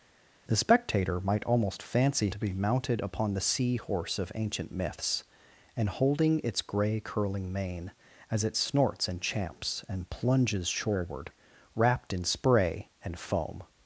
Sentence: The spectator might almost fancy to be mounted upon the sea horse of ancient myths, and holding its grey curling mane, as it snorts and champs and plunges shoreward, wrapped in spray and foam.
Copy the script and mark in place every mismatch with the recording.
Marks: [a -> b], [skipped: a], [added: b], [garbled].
The spectator might almost fancy to be mounted upon the sea horse of ancient myths, and holding its grey curling mane, as it snorts and champs and plunges shoreward, wrapped in spray and foam.